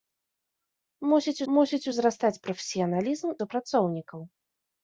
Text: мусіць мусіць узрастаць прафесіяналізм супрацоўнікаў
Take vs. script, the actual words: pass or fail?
pass